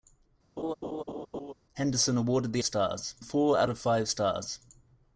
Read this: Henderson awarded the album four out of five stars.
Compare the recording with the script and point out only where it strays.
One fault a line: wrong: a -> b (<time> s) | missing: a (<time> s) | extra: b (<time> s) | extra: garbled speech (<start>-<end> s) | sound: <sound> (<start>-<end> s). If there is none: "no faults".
sound: laugh (0.6-1.5 s)
wrong: album -> stars (2.6 s)